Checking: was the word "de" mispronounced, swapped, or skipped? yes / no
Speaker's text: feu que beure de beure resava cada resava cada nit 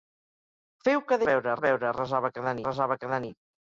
no